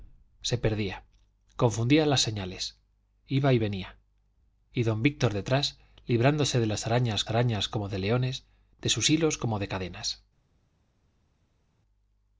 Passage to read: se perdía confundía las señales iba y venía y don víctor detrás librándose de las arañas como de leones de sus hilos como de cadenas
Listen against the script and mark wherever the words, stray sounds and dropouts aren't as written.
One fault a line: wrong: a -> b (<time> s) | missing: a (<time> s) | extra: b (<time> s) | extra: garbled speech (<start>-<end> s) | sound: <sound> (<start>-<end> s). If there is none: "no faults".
extra: arañas (7.3 s)